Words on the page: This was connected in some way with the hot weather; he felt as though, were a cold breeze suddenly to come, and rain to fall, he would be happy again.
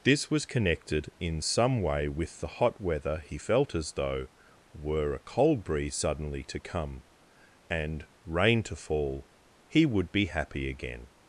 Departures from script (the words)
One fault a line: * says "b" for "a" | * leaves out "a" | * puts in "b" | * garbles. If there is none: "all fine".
all fine